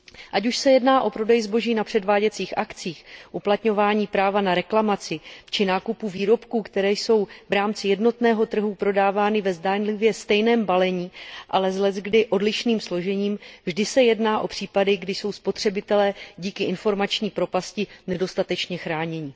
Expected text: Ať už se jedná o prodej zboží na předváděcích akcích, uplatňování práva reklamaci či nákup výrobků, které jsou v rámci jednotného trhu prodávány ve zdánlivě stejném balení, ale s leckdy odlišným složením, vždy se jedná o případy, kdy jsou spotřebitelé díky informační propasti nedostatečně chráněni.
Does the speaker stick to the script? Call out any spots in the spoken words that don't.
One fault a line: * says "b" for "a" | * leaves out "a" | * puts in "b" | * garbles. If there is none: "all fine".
* puts in "na"